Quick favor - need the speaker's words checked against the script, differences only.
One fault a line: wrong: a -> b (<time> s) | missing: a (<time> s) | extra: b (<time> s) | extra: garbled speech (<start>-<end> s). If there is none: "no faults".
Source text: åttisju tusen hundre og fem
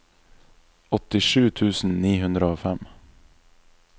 extra: ni (2.0 s)